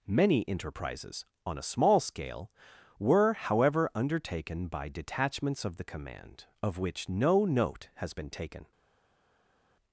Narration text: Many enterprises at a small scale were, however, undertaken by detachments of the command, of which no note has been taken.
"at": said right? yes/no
no